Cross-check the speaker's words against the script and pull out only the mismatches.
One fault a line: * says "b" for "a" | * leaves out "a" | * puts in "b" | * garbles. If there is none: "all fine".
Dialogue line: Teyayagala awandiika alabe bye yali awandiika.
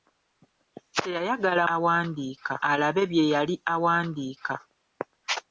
all fine